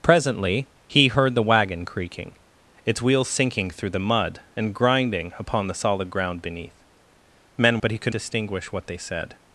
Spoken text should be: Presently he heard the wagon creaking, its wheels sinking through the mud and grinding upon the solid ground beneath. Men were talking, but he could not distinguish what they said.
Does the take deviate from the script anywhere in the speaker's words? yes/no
yes